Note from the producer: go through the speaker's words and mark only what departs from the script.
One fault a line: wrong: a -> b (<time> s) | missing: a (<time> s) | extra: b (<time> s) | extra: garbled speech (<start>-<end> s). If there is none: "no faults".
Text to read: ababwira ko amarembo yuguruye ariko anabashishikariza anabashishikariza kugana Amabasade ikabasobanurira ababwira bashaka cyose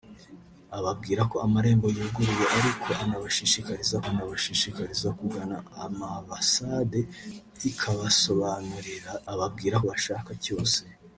no faults